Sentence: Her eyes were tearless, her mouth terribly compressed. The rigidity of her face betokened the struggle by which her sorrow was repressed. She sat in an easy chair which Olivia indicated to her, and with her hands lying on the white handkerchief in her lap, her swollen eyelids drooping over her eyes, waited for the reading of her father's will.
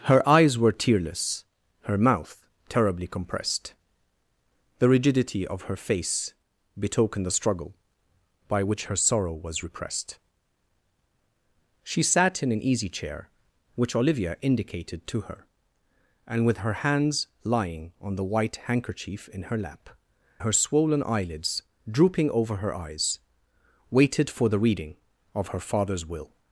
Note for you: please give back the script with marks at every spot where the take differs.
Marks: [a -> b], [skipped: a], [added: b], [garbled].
Her eyes were tearless, her mouth terribly compressed. The rigidity of her face betokened the struggle by which her sorrow was repressed. She sat in an easy chair which Olivia indicated to her, and with her hands lying on the white handkerchief in her lap, her swollen eyelids drooping over her eyes, waited for the reading of her father's will.